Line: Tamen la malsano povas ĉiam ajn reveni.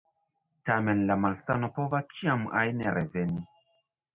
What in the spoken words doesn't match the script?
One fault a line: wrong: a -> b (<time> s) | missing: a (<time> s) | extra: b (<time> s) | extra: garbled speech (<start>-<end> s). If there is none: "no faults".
no faults